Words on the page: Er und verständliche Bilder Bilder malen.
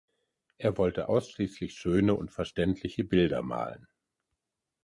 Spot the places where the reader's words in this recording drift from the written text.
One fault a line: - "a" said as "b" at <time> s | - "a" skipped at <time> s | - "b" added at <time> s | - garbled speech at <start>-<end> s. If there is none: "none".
- "wollte ausschließlich schöne" added at 0.8 s
- "Bilder" skipped at 3.4 s